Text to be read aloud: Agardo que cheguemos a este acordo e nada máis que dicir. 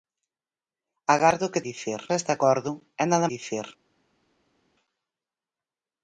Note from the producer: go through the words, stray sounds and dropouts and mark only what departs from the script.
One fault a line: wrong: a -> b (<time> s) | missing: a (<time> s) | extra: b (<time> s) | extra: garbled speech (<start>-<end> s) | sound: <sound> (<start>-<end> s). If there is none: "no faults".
wrong: cheguemos -> dicir (1.7 s)
missing: máis que (3.3 s)